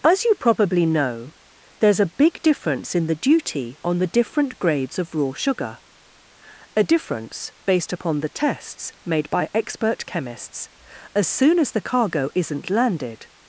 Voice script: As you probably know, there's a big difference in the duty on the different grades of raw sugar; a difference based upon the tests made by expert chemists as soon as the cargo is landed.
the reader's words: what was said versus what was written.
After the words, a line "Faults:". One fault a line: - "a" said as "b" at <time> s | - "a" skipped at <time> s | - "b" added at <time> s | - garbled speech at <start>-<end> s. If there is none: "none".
As you probably know, there's a big difference in the duty on the different grades of raw sugar; a difference based upon the tests made by expert chemists as soon as the cargo isn't landed.
Faults:
- "is" said as "isn't" at 12.3 s